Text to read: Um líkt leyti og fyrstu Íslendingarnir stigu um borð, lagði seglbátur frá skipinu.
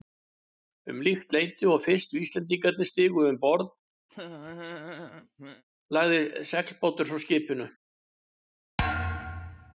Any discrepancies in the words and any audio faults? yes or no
yes